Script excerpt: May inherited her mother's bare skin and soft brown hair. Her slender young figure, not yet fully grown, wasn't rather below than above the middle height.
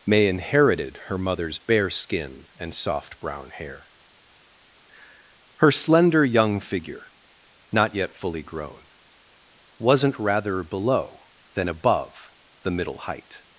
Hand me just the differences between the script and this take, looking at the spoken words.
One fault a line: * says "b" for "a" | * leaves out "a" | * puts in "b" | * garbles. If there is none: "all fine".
all fine